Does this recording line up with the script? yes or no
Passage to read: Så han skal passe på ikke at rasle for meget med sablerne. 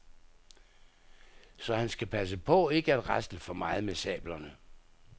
yes